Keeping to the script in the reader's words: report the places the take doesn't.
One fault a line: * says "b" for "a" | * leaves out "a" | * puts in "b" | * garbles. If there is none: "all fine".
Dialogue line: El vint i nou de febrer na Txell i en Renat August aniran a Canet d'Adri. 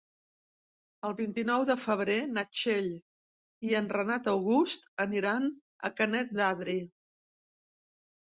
all fine